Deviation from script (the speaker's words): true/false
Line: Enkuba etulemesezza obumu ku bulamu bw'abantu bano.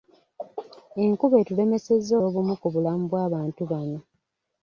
false